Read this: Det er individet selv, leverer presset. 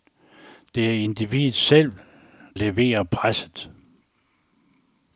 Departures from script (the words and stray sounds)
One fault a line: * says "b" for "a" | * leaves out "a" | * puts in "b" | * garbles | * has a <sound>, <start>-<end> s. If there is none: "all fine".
all fine